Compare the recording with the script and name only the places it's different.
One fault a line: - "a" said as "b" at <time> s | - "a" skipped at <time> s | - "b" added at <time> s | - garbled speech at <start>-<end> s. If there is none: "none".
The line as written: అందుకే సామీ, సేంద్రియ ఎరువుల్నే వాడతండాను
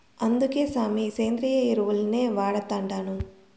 none